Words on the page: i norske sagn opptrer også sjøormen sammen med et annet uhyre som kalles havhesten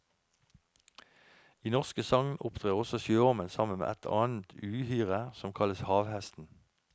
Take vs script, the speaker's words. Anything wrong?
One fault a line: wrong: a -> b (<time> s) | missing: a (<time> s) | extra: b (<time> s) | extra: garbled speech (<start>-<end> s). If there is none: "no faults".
no faults